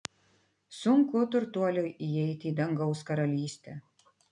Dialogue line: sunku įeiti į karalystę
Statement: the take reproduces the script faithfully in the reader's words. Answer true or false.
false